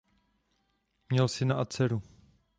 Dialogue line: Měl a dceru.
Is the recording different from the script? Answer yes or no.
yes